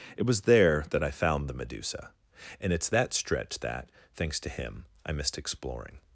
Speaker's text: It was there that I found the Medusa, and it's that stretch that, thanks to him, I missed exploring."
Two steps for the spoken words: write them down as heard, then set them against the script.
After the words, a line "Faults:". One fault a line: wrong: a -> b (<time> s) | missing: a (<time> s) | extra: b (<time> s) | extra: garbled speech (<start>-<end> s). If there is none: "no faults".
It was there that I found the Medusa, and it's that stretch that, thanks to him, I missed exploring."
Faults:
no faults